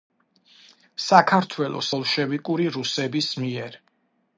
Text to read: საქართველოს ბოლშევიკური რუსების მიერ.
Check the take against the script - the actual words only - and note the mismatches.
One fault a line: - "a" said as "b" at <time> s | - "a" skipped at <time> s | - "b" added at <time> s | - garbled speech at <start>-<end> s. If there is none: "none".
none